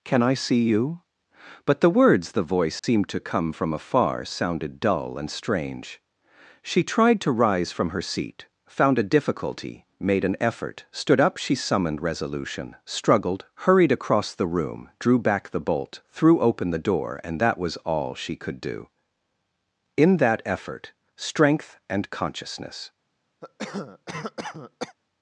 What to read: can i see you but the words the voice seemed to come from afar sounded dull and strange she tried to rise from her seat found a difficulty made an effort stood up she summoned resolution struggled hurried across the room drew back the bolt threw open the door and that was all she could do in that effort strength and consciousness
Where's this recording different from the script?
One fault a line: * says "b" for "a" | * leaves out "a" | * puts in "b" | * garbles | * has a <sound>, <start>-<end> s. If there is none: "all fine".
* has a dropout, 2.8-2.8 s
* has a cough, 23.4-25.0 s